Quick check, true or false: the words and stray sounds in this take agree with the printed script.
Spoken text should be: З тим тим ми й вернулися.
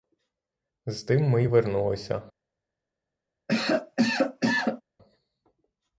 false